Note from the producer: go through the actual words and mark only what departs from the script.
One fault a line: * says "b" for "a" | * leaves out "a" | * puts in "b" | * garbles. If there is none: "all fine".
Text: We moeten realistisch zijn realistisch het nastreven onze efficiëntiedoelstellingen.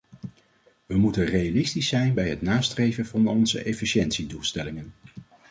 * says "bij" for "realistisch"
* puts in "van"